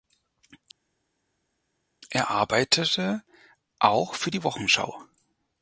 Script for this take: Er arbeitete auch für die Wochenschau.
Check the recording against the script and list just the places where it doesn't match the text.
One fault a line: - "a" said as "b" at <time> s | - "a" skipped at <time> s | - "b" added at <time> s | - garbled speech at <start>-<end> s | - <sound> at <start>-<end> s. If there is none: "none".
none